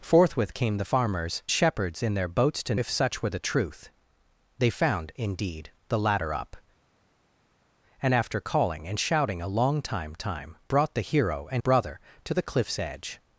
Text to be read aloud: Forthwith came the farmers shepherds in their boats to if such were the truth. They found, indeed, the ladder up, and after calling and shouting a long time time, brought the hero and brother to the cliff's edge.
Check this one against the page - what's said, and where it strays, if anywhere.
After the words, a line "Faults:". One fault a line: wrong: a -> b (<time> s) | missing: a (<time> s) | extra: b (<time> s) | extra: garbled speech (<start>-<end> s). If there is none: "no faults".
Forthwith came the farmers shepherds in their boats to if such were the truth. They found, indeed, the ladder up, and after calling and shouting a long time time, brought the hero and brother to the cliff's edge.
Faults:
no faults